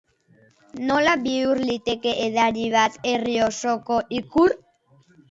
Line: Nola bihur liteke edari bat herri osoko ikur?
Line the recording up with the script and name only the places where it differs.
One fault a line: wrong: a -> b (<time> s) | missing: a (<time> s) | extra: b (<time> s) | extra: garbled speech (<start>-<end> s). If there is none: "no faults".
no faults